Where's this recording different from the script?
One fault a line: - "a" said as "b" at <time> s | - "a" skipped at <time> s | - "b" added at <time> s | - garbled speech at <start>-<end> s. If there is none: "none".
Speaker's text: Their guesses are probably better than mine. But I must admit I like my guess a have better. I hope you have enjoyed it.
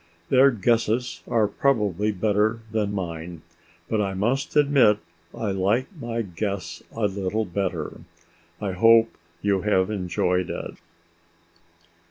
- "have" said as "little" at 7.1 s